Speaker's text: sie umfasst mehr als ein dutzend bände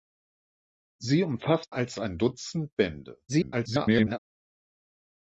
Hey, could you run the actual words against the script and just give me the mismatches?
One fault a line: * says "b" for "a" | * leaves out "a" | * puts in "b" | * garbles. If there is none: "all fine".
* leaves out "mehr"
* garbles